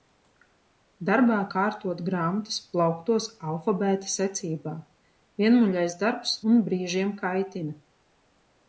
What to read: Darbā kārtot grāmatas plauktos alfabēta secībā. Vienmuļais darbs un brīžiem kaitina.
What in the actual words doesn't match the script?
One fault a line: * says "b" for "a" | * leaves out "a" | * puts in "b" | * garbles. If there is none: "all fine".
all fine